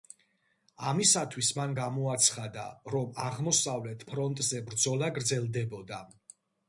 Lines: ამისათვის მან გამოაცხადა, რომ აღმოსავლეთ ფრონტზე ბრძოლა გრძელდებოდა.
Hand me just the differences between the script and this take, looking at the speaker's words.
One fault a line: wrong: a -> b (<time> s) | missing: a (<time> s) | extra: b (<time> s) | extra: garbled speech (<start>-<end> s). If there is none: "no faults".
no faults